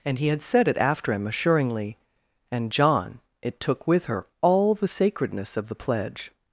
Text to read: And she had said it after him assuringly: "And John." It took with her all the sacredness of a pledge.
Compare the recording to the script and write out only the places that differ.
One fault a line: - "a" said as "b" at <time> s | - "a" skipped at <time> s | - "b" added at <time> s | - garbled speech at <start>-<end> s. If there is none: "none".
- "she" said as "he" at 0.2 s
- "a" said as "the" at 5.7 s